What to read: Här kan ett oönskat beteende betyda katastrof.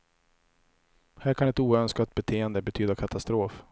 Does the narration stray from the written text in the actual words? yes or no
no